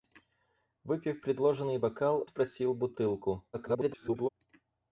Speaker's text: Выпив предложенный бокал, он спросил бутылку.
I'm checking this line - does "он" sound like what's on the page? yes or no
no